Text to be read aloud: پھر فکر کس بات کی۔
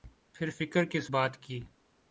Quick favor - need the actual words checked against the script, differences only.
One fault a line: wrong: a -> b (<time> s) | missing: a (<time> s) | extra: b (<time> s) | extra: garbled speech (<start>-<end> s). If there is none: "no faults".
no faults